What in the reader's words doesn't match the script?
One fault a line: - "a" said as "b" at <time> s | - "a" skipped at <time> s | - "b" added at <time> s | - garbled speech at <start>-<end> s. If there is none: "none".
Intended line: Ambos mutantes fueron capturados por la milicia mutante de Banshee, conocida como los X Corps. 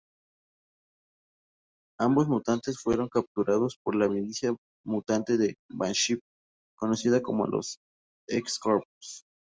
none